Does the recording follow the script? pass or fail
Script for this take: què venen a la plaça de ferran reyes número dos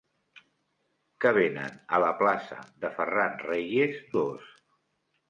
fail